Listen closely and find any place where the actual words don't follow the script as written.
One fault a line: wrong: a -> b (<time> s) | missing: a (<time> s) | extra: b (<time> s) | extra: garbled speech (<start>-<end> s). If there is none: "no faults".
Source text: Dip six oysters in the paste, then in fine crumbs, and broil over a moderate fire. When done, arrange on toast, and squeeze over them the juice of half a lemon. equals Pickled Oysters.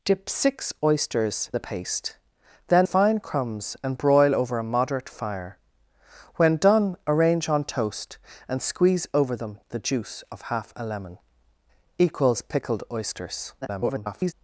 missing: in (1.5 s)
missing: in (2.9 s)
extra: garbled speech (13.6-14.3 s)